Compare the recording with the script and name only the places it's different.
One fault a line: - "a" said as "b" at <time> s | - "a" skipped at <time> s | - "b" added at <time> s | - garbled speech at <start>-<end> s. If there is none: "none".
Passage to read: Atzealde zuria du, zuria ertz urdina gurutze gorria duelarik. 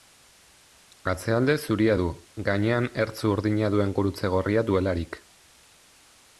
- "zuria" said as "gainean" at 2.5 s
- "duen" added at 3.8 s